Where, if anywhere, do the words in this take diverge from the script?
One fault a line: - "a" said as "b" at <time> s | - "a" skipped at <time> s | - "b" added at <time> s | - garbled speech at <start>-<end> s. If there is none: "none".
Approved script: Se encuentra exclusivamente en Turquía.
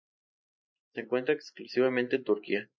none